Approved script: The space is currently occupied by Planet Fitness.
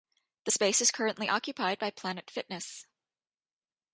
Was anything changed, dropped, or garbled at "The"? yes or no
no